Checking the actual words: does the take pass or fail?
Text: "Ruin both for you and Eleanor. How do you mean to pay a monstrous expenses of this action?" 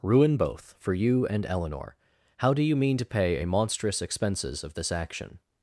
pass